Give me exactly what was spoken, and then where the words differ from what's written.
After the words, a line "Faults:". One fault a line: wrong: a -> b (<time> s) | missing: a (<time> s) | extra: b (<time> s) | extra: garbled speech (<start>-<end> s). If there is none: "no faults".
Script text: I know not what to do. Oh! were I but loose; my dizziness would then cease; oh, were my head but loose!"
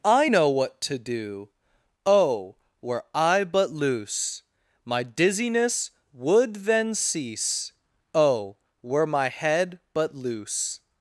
I know what to do. Oh! were I but loose; my dizziness would then cease; oh, were my head but loose!"
Faults:
missing: not (0.5 s)